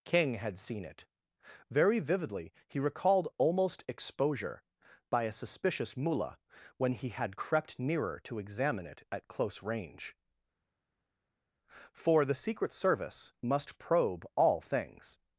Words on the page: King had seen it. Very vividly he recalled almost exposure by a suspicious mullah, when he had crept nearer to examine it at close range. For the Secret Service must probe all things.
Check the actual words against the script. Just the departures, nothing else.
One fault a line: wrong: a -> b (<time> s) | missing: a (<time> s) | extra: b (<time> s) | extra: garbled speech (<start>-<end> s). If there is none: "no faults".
no faults